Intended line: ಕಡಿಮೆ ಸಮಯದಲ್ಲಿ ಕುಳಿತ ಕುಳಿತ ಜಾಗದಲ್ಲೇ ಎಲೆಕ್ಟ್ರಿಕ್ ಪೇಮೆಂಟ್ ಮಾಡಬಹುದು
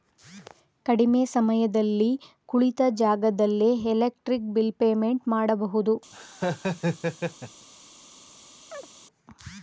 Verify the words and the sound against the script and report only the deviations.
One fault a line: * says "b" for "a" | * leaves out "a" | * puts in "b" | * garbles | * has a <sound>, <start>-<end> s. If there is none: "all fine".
* leaves out "ಕುಳಿತ"
* puts in "ಬಿಲ್"
* has a laugh, 6.1-7.7 s
* has a chirp, 8.7-8.9 s